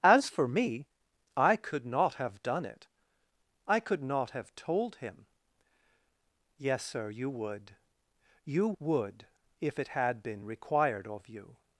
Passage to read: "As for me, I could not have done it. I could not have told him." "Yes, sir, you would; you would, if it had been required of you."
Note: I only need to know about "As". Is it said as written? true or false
true